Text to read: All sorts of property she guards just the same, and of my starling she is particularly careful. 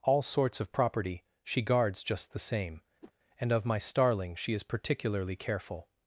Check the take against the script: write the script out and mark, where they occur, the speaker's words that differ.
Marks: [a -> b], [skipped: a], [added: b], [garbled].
All sorts of property she guards just the same, and of my starling she is particularly careful.